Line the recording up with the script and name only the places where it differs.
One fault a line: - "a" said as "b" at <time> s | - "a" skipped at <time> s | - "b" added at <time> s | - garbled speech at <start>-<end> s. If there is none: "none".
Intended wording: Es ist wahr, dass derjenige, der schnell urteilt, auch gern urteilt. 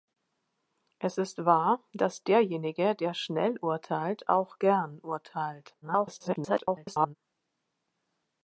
- garbled speech at 5.8-7.2 s